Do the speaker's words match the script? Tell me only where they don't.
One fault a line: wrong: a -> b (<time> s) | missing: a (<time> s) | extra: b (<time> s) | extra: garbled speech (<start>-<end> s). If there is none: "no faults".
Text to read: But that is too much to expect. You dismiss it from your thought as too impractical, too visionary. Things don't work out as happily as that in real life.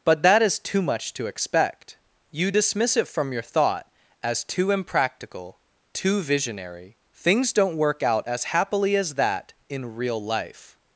no faults